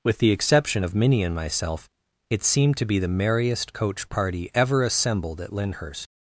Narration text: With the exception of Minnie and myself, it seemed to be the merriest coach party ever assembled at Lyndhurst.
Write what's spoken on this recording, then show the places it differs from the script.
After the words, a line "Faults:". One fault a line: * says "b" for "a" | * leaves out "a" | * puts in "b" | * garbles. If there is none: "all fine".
With the exception of Minnie and myself, it seemed to be the merriest coach party ever assembled at Lyndhurst.
Faults:
all fine